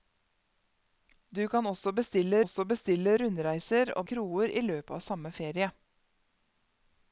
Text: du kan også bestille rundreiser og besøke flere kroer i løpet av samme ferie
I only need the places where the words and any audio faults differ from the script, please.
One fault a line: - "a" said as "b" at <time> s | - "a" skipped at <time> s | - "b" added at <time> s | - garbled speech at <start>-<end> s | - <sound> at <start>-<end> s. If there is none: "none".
- "også bestille" added at 2.4 s
- "besøke flere" skipped at 4.1 s